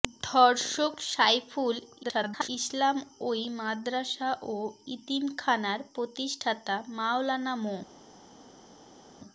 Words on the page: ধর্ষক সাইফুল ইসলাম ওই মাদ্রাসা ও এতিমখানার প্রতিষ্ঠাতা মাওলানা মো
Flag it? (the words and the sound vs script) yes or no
yes